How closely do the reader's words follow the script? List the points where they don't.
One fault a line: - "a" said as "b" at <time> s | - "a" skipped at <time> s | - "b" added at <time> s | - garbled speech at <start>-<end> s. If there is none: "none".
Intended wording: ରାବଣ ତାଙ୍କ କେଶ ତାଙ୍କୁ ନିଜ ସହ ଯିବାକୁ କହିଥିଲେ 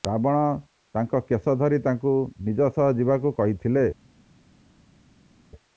- "ଧରି" added at 1.6 s